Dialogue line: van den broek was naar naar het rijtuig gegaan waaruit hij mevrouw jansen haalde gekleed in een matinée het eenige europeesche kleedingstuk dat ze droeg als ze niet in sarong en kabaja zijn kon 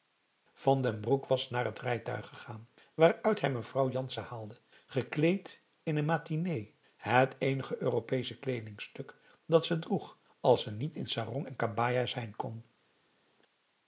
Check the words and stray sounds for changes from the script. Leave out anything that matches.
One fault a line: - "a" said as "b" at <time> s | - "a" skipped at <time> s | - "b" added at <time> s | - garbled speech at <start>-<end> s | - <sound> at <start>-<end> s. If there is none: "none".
- "naar" skipped at 1.6 s